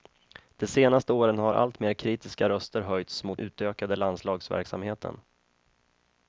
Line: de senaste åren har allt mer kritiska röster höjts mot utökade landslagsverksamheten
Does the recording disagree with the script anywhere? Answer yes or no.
no